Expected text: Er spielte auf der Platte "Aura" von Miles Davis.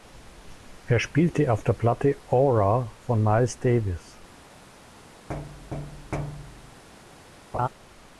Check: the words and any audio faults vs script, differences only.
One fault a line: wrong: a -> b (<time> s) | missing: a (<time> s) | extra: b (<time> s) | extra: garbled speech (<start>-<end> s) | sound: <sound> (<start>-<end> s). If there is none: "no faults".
sound: thud (5.3-6.8 s)
sound: laugh (7.5-7.7 s)